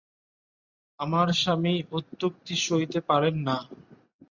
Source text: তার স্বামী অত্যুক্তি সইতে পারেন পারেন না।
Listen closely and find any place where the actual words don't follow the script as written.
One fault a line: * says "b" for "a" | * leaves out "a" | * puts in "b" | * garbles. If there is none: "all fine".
* says "আমার" for "তার"
* leaves out "পারেন"